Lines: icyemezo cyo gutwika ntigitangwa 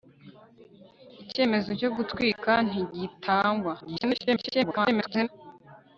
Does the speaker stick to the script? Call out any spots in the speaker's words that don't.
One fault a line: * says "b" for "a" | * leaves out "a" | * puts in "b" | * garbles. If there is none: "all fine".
* garbles